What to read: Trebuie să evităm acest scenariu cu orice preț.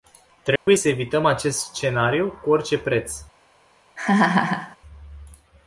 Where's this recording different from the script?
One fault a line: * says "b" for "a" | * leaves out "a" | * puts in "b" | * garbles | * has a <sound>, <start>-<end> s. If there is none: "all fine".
* has a dropout, 0.6-0.7 s
* has a laugh, 4.0-4.8 s